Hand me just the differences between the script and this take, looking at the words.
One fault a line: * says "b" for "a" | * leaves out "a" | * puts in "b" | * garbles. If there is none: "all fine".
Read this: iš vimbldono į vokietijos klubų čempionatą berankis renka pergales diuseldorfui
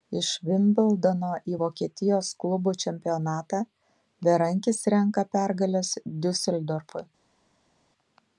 all fine